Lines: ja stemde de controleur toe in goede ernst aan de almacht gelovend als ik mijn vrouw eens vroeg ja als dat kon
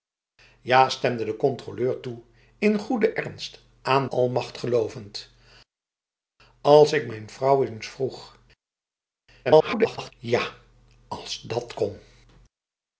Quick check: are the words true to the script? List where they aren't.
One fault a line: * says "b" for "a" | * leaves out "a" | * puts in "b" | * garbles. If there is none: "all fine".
* leaves out "de"
* garbles